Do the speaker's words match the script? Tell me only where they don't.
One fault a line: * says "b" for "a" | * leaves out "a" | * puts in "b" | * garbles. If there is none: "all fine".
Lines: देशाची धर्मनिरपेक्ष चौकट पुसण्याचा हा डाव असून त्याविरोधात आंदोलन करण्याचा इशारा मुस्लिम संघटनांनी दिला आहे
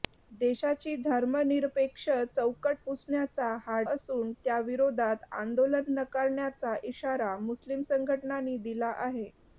* leaves out "डाव"